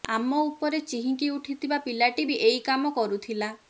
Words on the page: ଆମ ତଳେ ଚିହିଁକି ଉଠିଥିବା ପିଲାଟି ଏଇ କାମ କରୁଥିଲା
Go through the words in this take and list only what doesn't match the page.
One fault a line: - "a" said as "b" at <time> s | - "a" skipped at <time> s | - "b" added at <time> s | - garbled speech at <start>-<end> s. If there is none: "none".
- "ତଳେ" said as "ଉପରେ" at 0.5 s
- "ବି" added at 2.3 s